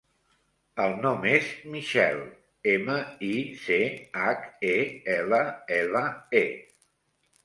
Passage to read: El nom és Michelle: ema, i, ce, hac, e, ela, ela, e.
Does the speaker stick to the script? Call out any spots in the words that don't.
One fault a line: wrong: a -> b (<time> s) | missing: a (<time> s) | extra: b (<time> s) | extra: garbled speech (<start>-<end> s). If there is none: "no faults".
no faults